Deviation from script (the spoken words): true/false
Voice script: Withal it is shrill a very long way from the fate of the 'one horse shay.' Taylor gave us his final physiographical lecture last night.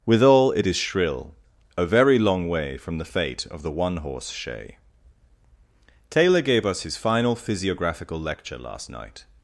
false